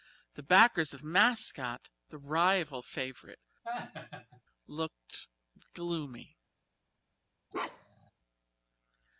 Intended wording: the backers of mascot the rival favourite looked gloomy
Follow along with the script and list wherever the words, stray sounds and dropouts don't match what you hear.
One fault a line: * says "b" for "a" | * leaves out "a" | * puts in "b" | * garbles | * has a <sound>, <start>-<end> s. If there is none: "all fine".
* has a laugh, 3.6-4.4 s
* has a bark, 7.5-8.1 s